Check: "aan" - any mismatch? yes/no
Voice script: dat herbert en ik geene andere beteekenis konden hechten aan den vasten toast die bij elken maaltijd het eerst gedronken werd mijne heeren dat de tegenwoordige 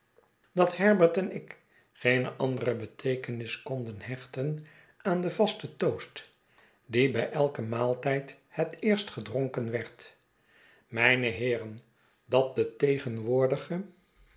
no